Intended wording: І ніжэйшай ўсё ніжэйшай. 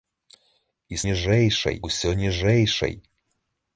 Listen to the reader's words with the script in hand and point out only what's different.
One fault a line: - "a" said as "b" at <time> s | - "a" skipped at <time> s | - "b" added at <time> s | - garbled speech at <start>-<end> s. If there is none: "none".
none